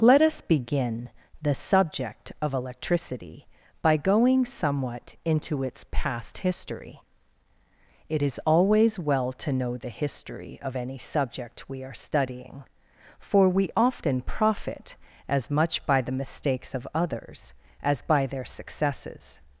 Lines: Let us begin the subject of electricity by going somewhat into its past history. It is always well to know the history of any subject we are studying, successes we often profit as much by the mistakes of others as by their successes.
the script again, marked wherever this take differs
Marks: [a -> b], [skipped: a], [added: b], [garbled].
Let us begin the subject of electricity by going somewhat into its past history. It is always well to know the history of any subject we are studying, [successes -> for] we often profit as much by the mistakes of others as by their successes.